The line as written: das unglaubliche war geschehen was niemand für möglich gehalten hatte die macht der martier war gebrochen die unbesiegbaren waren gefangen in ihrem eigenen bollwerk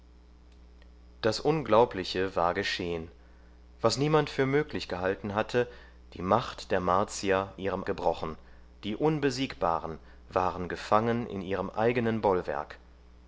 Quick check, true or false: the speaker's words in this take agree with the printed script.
false